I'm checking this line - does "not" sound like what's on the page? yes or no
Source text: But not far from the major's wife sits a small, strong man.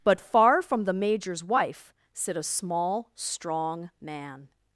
no